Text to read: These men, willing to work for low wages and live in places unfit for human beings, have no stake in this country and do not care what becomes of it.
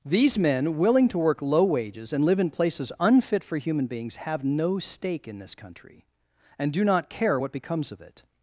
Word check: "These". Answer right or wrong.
right